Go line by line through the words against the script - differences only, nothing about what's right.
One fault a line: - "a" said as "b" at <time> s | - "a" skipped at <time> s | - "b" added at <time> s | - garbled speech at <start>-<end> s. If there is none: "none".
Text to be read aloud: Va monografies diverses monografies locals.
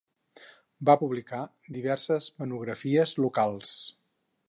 - "monografies" said as "publicar" at 1.0 s